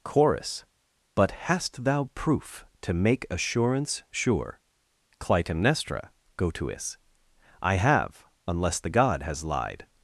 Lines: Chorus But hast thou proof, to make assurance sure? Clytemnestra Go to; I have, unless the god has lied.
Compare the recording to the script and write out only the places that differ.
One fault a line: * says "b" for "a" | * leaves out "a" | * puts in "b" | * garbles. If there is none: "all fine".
* puts in "is"